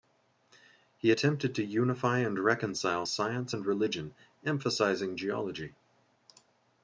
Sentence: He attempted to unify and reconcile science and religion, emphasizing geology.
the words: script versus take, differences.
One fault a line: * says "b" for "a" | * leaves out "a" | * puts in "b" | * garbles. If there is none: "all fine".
all fine